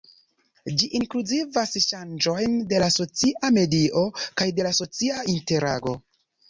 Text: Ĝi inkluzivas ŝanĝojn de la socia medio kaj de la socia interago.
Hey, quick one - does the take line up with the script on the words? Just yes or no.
yes